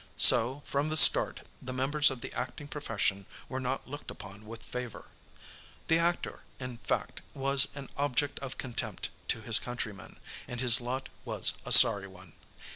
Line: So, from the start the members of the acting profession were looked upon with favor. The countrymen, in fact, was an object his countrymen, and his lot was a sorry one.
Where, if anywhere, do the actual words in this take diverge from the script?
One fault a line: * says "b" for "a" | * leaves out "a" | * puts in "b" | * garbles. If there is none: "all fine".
* puts in "not"
* says "actor" for "countrymen"
* puts in "of contempt to"